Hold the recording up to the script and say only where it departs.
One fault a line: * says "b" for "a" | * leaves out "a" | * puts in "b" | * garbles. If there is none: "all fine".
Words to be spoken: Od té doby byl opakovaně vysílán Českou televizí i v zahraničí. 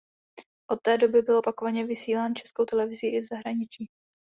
all fine